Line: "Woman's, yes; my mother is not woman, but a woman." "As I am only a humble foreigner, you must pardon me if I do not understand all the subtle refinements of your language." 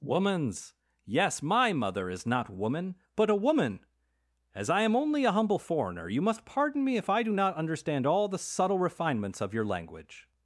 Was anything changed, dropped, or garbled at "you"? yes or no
no